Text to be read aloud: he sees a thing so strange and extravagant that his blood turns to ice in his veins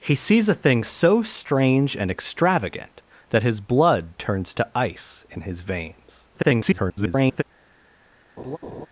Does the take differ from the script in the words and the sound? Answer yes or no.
yes